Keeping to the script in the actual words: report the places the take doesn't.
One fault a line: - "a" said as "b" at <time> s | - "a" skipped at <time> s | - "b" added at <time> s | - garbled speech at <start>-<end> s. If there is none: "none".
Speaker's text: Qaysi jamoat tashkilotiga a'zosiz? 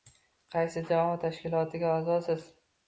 none